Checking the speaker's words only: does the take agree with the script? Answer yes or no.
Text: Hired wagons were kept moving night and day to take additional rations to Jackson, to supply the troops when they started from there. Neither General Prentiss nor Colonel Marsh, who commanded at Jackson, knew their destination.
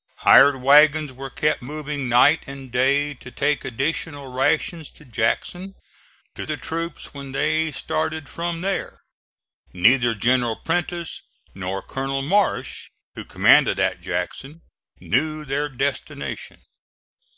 no